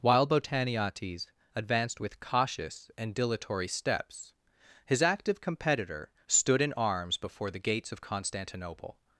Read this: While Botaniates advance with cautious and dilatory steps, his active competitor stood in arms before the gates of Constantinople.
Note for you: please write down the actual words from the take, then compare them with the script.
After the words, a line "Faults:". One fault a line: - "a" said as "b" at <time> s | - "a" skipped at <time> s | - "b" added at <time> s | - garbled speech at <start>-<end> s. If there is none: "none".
While Botaniates advanced with cautious and dilatory steps, his active competitor stood in arms before the gates of Constantinople.
Faults:
- "advance" said as "advanced" at 1.5 s